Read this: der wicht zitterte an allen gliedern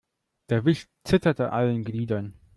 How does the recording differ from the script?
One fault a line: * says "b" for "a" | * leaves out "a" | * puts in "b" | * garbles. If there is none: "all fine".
* leaves out "an"